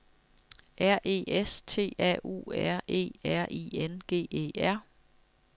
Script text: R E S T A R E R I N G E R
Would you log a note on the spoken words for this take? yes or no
yes